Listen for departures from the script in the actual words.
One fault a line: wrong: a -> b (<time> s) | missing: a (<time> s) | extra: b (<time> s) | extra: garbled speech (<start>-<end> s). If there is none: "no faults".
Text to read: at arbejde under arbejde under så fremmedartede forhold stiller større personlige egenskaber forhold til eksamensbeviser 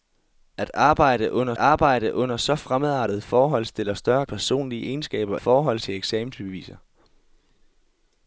no faults